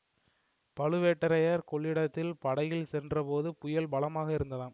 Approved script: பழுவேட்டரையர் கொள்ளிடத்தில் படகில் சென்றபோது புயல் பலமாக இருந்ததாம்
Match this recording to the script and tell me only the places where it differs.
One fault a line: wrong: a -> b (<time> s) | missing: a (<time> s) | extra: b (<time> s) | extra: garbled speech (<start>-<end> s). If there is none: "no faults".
no faults